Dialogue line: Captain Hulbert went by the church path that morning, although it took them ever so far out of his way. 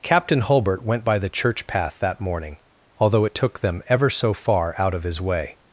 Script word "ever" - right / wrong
right